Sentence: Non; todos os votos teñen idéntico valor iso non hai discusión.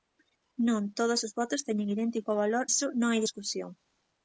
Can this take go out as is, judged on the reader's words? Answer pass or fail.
pass